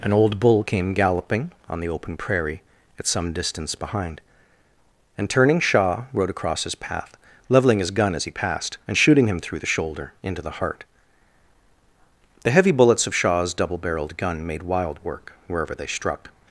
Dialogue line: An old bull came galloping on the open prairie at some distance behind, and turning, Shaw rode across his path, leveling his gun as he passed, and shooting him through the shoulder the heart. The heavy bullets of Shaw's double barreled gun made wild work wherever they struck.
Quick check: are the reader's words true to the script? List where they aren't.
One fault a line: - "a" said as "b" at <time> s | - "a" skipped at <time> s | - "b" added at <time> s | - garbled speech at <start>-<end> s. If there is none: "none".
- "into" added at 10.2 s